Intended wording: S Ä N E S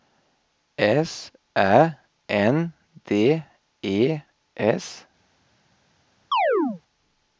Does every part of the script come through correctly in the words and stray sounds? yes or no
no